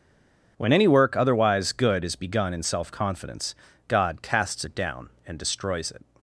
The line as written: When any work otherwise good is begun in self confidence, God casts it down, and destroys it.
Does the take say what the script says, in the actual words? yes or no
yes